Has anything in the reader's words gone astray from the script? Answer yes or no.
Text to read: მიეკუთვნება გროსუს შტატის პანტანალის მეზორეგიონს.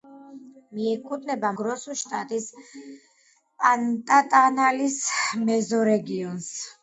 no